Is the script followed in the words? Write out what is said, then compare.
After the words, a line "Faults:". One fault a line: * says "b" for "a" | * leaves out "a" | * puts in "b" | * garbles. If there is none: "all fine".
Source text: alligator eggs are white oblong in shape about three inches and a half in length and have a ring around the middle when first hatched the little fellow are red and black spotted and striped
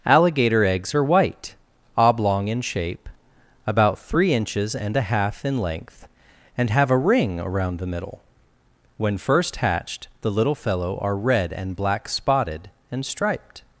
alligator eggs are white oblong in shape about three inches and a half in length and have a ring around the middle when first hatched the little fellow are red and black spotted and striped
Faults:
all fine